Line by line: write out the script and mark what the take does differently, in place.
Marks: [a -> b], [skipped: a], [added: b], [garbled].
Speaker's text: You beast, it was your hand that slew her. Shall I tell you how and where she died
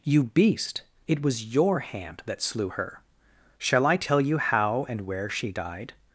You beast, it was your hand that slew her. Shall I tell you how and where she died